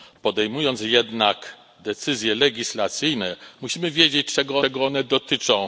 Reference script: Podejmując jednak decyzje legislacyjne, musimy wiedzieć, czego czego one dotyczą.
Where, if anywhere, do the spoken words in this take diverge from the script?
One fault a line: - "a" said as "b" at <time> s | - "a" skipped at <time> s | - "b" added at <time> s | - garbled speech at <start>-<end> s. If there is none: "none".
none